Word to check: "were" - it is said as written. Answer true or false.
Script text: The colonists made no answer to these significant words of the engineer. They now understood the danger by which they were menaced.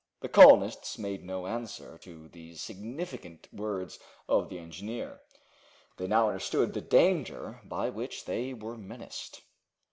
true